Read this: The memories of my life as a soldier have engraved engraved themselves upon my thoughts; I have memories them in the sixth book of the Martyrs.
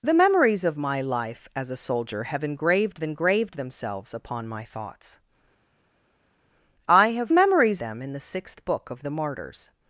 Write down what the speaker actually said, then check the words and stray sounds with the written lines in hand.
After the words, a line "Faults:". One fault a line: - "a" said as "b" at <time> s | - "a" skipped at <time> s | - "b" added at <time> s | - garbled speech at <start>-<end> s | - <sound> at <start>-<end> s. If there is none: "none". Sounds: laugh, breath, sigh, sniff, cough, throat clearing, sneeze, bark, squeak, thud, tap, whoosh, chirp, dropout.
The memories of my life as a soldier have engraved engraved themselves upon my thoughts; I have memories them in the sixth book of the Martyrs.
Faults:
none